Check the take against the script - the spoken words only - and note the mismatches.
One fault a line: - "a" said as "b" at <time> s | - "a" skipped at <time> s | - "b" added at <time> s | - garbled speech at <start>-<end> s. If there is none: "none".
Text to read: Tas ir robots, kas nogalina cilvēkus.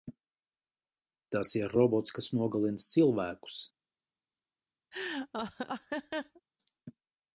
none